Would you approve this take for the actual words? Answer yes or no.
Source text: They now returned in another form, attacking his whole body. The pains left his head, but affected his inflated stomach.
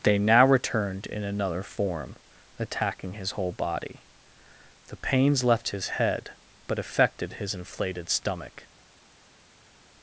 yes